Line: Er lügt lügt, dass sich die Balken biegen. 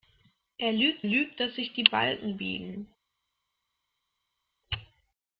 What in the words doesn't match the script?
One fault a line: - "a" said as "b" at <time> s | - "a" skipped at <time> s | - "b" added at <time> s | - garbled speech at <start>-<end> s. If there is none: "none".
none